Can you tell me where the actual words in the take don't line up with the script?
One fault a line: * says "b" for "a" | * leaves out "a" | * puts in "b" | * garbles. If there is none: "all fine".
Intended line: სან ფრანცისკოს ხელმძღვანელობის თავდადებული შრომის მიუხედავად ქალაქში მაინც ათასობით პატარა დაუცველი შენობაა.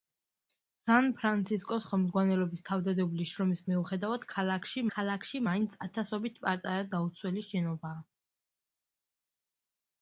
* puts in "ქალაქში"